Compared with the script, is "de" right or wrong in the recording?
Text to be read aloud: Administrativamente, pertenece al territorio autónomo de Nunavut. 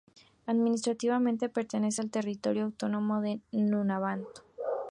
right